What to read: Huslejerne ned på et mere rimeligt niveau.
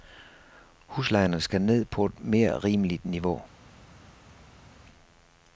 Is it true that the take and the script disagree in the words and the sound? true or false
true